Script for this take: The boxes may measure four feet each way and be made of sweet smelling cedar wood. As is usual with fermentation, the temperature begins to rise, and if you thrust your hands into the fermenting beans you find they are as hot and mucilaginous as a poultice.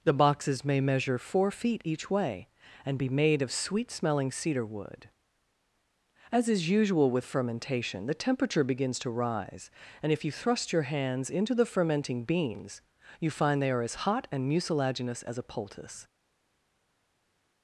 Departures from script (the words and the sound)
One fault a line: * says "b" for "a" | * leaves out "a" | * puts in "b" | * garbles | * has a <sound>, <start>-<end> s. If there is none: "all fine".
all fine